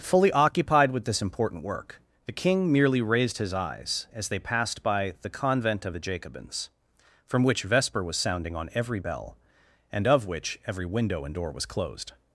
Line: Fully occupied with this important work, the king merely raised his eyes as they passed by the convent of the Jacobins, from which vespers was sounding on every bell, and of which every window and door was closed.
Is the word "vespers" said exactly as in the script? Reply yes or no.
no